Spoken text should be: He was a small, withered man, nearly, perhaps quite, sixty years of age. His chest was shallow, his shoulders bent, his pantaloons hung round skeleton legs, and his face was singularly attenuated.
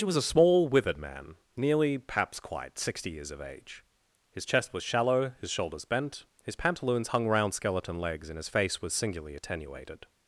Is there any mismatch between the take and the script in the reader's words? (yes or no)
no